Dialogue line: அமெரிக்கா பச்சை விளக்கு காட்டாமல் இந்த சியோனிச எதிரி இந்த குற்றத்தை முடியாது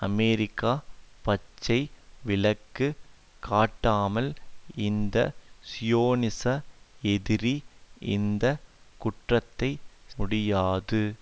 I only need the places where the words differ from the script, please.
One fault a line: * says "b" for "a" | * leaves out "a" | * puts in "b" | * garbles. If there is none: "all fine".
all fine